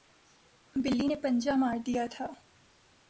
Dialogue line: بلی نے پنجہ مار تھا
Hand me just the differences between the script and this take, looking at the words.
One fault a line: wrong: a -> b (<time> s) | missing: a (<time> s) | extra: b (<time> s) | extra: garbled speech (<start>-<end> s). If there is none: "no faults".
extra: دیا (1.8 s)